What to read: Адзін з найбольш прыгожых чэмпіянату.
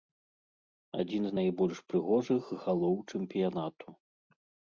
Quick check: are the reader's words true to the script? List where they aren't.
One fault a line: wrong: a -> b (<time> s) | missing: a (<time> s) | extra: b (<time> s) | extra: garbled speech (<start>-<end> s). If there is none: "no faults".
extra: галоў (2.6 s)